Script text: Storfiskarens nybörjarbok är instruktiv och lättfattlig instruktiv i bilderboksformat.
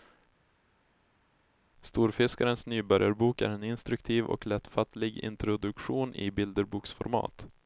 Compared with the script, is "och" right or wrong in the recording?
right